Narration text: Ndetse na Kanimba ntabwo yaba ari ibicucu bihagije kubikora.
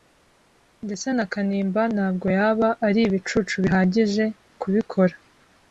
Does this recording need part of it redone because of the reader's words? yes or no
no